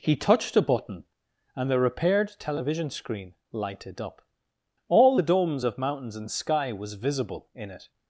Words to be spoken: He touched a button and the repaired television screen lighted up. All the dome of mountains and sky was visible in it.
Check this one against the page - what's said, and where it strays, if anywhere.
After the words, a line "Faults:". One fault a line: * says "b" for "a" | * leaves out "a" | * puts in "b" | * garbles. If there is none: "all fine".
He touched a button and the repaired television screen lighted up. All the domes of mountains and sky was visible in it.
Faults:
* says "domes" for "dome"